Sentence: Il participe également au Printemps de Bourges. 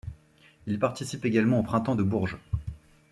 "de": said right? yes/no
yes